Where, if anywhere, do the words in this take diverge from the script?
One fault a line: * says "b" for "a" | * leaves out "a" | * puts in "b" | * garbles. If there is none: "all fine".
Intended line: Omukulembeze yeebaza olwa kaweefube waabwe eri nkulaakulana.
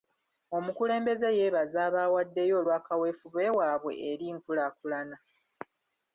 * puts in "abaawaddeyo"